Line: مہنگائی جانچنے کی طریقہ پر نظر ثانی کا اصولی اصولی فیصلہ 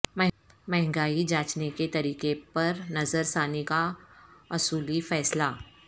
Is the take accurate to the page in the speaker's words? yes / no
no